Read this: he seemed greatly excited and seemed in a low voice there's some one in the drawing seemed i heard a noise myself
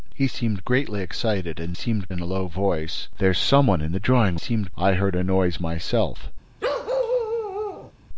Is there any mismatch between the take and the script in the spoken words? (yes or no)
no